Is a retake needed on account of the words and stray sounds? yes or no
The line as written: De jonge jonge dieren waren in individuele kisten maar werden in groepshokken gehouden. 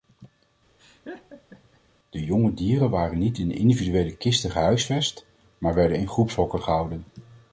yes